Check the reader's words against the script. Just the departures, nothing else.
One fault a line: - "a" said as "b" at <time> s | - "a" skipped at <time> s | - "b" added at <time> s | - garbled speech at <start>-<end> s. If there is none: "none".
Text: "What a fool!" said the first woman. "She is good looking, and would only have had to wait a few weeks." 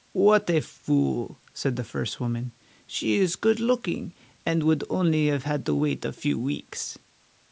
none